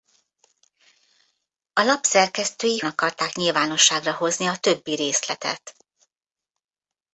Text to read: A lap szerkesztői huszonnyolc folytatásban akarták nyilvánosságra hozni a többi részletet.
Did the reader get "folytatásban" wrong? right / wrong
wrong